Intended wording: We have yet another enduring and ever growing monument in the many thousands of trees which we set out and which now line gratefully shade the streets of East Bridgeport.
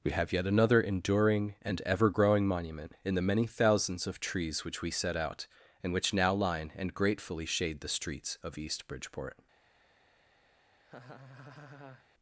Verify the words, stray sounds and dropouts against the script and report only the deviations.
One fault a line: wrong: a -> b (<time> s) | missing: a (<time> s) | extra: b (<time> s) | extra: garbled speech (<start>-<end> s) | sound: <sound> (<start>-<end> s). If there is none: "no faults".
extra: and (6.8 s)
sound: laugh (10.8-12.1 s)